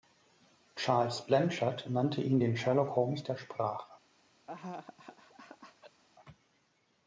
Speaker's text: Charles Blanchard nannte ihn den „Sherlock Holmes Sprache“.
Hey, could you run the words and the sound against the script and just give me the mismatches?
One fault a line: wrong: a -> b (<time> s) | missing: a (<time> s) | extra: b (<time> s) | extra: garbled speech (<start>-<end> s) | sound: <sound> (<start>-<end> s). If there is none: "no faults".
extra: der (3.2 s)
sound: laugh (4.5-6.0 s)